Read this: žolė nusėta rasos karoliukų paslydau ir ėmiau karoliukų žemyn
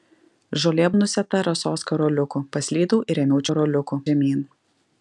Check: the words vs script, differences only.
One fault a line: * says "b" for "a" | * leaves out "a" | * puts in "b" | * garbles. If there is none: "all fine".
all fine